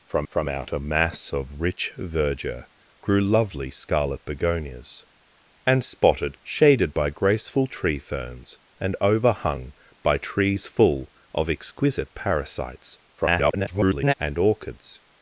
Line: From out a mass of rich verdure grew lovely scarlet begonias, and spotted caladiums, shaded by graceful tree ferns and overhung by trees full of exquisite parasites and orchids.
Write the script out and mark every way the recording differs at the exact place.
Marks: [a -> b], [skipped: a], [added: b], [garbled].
From [added: from] out a mass of rich verdure grew lovely scarlet begonias, and spotted [skipped: caladiums,] shaded by graceful tree ferns and overhung by trees full of exquisite parasites [garbled] and orchids.